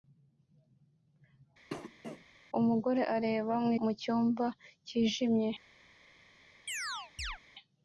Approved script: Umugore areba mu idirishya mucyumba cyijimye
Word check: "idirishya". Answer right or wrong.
wrong